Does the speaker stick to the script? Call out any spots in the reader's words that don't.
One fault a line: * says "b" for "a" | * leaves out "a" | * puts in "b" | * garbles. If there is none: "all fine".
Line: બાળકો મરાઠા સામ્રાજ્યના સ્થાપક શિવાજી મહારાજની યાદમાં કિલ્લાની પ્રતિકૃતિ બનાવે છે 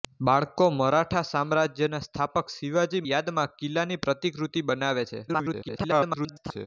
* leaves out "મહારાજની"
* garbles